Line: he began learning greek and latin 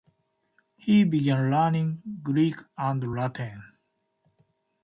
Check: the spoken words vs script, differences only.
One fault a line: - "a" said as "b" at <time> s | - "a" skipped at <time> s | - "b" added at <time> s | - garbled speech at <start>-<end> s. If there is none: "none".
none